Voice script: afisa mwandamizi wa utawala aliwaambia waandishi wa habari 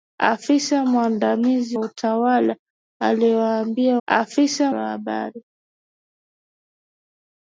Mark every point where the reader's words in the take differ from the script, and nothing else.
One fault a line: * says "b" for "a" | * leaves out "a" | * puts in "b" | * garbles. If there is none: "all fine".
* leaves out "wa"
* says "afisa" for "waandishi"